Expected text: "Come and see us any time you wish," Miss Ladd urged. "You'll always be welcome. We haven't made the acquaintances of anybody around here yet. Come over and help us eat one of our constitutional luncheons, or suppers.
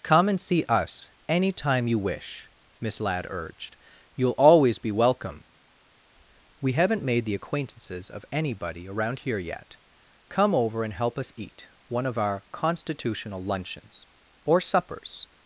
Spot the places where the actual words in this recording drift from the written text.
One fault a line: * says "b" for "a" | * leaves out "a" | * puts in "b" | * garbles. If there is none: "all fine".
all fine